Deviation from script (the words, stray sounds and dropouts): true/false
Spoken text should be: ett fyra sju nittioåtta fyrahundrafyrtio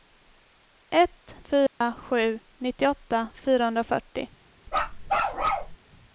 true